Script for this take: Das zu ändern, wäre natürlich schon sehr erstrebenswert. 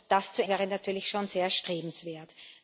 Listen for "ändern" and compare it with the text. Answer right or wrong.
wrong